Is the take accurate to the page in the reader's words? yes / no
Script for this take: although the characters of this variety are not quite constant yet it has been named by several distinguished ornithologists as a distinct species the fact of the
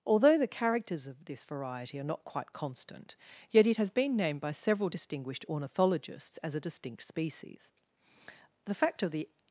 yes